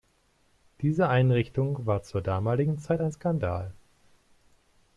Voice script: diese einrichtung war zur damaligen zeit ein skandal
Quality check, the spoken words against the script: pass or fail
pass